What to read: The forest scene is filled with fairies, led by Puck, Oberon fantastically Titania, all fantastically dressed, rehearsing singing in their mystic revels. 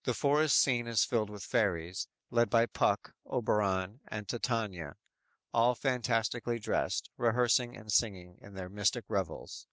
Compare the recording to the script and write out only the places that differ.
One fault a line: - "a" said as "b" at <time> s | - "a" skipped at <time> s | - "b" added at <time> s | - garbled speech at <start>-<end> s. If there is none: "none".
- "fantastically" said as "and" at 4.1 s
- "and" added at 7.8 s